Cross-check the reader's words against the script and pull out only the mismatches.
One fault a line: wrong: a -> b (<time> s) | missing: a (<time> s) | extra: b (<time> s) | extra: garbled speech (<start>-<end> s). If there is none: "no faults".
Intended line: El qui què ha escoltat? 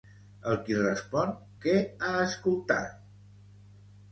extra: respon (0.8 s)